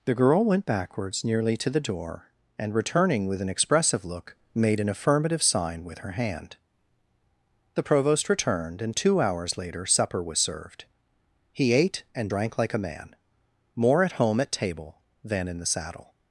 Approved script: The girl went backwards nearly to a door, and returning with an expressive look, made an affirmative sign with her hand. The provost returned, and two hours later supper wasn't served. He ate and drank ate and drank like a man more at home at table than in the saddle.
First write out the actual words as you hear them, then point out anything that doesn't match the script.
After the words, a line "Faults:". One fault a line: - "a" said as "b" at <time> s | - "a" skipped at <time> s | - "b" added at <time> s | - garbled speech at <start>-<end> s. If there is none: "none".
The girl went backwards nearly to the door, and returning with an expressive look, made an affirmative sign with her hand. The provost returned, and two hours later supper was served. He ate and drank like a man more at home at table than in the saddle.
Faults:
- "a" said as "the" at 1.7 s
- "wasn't" said as "was" at 10.2 s
- "ate and drank" skipped at 12.6 s